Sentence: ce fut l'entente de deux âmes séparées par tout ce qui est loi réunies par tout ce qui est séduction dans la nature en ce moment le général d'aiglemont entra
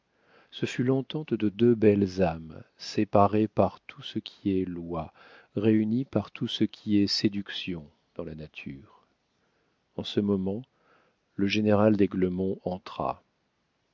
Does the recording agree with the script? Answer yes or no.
no